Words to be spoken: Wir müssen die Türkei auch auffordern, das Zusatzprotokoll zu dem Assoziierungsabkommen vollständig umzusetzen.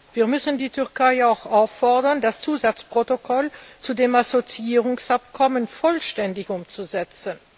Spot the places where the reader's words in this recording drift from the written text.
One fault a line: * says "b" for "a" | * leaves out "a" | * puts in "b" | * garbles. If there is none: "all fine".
all fine